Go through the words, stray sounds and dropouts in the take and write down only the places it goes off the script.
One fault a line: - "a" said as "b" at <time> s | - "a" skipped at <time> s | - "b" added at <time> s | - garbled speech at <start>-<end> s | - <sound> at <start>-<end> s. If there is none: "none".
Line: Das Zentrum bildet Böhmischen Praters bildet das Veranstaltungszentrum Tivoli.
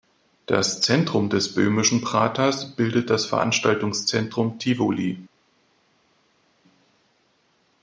- "bildet" said as "des" at 1.3 s